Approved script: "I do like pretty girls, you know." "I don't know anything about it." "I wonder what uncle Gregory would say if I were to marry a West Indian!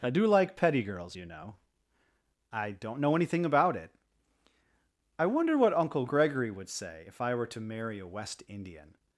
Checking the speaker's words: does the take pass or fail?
fail